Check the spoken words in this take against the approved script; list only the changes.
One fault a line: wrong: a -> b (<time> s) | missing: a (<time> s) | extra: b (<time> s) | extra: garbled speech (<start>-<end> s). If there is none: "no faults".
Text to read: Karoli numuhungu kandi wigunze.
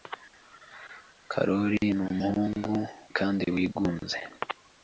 no faults